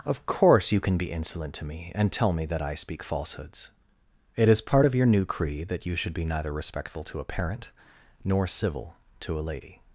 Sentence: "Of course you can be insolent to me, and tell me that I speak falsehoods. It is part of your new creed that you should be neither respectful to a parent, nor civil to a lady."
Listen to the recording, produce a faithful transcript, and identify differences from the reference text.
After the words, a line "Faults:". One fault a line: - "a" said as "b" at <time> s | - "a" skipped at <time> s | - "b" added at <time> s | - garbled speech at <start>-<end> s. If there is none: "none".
"Of course you can be insolent to me, and tell me that I speak falsehoods. It is part of your new creed that you should be neither respectful to a parent, nor civil to a lady."
Faults:
none